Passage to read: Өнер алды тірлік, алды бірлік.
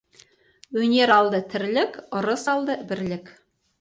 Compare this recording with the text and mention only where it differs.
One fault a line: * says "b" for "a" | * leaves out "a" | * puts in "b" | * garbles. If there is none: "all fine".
* puts in "ырыс"